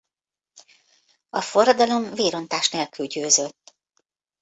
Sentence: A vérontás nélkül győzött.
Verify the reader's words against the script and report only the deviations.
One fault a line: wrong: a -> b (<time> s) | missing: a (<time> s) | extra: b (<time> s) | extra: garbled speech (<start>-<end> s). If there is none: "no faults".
extra: forradalom (1.4 s)